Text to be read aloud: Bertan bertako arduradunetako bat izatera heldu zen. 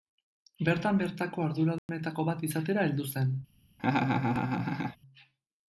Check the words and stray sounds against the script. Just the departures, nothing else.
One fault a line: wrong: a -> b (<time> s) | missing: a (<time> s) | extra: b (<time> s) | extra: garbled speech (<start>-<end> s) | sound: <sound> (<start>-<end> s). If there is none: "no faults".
sound: dropout (1.8-1.9 s)
sound: laugh (3.8-5.0 s)